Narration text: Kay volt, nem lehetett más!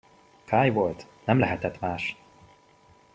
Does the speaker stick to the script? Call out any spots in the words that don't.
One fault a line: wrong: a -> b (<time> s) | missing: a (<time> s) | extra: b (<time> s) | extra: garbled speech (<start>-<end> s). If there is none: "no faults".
no faults